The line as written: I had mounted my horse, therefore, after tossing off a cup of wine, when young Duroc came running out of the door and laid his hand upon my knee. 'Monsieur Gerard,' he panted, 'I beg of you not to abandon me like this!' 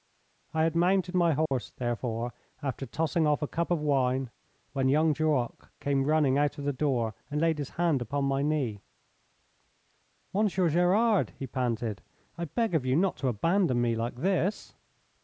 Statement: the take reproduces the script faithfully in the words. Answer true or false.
true